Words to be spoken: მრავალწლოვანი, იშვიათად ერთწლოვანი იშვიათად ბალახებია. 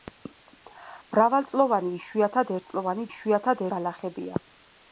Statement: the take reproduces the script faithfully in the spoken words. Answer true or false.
true